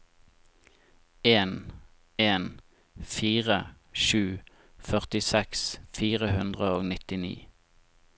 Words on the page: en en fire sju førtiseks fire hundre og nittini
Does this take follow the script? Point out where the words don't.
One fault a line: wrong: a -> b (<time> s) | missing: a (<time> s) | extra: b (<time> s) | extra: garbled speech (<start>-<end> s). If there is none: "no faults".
no faults